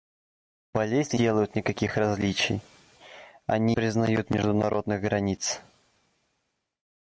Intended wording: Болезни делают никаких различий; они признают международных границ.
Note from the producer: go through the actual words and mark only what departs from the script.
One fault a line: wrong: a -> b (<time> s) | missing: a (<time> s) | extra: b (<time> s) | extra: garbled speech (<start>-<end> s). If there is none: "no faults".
no faults